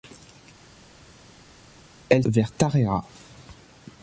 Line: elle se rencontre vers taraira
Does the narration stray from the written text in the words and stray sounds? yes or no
yes